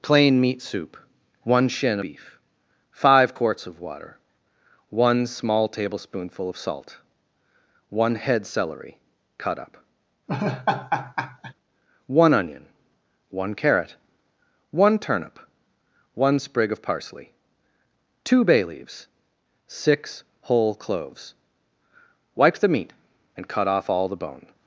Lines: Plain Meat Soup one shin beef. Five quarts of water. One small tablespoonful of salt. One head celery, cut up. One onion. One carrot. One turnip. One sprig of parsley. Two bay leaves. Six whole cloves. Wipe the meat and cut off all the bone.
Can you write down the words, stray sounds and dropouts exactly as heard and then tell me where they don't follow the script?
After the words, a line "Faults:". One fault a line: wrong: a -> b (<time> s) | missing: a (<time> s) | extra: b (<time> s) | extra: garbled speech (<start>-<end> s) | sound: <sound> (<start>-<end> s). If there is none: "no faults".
Plain Meat Soup one shin beef. Five quarts of water. One small tablespoonful of salt. One head celery, cut up. One onion. One carrot. One turnip. One sprig of parsley. Two bay leaves. Six whole cloves. Wipe the meat and cut off all the bone.
Faults:
sound: laugh (10.3-11.5 s)